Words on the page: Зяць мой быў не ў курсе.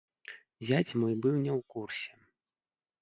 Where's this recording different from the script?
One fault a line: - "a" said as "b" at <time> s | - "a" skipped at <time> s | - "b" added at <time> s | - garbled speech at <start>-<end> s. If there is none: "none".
none